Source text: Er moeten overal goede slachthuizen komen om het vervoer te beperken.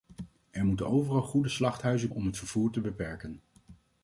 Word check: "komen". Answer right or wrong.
wrong